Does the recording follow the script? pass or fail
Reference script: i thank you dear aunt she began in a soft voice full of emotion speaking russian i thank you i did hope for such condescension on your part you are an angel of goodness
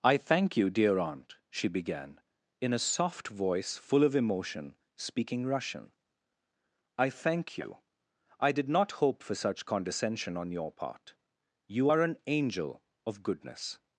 fail